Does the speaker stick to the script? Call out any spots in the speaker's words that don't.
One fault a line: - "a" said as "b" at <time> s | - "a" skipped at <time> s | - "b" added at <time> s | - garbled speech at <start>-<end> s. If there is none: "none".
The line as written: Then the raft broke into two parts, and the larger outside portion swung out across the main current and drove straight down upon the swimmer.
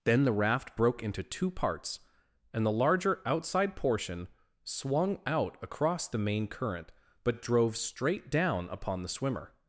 - "and" said as "but" at 7.2 s